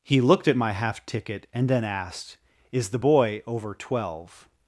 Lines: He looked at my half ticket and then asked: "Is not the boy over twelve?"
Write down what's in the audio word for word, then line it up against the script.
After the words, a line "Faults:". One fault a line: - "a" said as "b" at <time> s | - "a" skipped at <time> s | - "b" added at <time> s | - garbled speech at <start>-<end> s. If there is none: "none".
He looked at my half ticket and then asked: "Is the boy over twelve?"
Faults:
- "not" skipped at 2.9 s